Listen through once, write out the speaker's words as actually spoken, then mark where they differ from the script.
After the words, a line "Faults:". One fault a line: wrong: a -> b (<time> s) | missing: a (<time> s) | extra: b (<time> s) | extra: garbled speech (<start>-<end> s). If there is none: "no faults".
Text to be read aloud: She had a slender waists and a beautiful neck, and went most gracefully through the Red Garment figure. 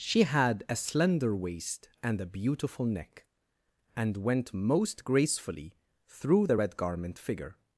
She had a slender waist and a beautiful neck, and went most gracefully through the Red Garment figure.
Faults:
wrong: waists -> waist (1.4 s)